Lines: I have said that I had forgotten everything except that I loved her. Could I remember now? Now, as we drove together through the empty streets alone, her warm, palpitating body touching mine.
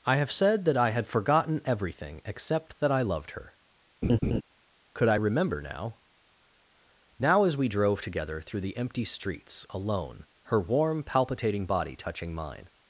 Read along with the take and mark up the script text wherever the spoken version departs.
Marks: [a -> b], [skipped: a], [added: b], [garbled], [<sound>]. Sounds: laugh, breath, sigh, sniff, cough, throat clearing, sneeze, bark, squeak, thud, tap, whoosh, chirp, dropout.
I have said that I had forgotten everything except that I loved her. [laugh] Could I remember now? Now, as we drove together through the empty streets alone, her warm, palpitating body touching mine.